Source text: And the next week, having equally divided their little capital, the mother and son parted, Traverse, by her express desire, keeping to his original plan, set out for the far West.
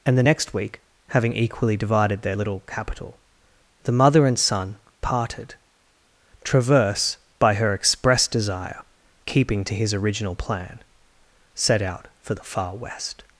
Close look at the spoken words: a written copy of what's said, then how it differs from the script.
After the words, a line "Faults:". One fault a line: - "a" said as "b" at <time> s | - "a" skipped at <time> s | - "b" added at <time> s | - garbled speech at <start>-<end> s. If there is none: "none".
And the next week, having equally divided their little capital, the mother and son parted, Traverse, by her express desire, keeping to his original plan, set out for the far West.
Faults:
none